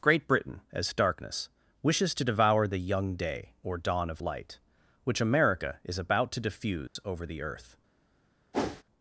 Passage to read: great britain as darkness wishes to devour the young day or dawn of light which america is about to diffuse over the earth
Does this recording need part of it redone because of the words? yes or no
no